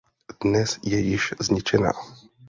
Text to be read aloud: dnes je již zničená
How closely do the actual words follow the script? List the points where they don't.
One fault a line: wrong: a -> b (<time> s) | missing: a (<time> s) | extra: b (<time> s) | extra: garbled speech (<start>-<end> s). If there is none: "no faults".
no faults